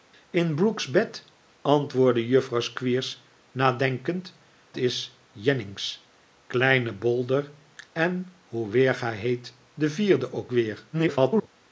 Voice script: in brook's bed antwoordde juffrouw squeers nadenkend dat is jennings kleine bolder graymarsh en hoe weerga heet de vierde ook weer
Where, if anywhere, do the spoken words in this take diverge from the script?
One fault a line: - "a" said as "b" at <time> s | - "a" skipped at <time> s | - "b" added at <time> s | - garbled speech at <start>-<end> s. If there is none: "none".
- "dat" skipped at 4.3 s
- "graymarsh" skipped at 7.5 s
- garbled speech at 10.9-11.5 s